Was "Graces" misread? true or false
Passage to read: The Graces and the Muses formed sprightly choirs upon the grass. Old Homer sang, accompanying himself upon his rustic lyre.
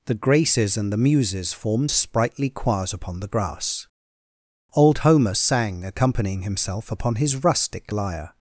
false